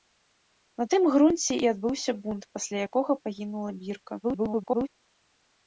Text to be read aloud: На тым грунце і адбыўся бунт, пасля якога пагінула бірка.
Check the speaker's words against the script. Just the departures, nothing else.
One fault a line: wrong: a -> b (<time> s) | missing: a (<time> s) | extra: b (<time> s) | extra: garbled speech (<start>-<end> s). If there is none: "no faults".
extra: garbled speech (4.2-4.9 s)